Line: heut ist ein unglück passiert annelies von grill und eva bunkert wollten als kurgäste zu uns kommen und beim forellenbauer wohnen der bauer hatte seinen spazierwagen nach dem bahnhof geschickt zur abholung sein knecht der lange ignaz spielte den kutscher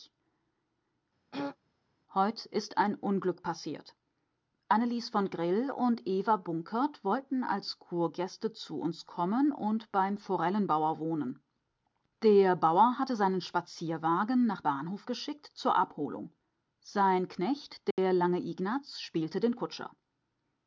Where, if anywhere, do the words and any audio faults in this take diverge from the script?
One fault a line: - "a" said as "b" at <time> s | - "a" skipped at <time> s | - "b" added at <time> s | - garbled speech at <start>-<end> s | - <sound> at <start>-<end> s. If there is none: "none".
- throat clearing at 1.3-1.6 s
- "dem" skipped at 14.6 s
- dropout at 17.9-18.0 s